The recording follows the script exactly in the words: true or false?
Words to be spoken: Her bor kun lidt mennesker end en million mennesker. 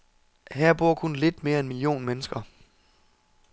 false